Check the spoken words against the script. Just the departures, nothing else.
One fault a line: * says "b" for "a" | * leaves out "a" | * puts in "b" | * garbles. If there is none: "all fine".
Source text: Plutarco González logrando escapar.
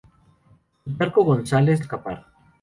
* leaves out "logrando"